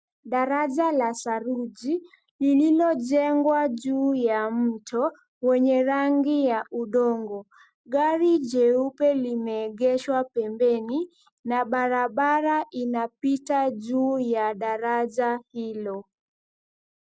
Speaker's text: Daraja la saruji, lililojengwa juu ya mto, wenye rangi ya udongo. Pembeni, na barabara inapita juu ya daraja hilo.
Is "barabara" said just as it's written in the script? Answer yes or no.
yes